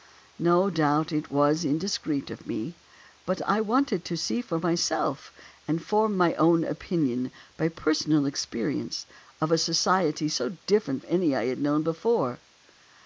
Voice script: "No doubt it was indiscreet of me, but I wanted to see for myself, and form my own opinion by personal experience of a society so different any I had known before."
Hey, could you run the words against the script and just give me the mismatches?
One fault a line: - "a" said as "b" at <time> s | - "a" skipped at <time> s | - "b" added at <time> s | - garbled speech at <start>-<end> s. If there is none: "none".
none